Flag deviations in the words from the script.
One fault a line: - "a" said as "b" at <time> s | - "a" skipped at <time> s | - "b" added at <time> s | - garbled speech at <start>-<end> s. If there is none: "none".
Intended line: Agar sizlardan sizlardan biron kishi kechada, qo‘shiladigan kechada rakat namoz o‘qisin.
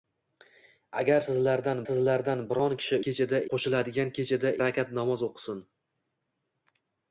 none